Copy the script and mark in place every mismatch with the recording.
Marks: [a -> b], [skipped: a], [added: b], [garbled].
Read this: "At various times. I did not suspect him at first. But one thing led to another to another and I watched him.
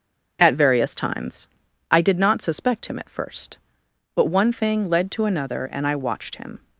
"At various times. I did not suspect him at first. But one thing led to another [skipped: to another] and I watched him.